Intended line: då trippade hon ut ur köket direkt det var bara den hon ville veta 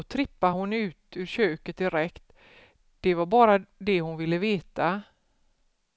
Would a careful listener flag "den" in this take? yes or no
yes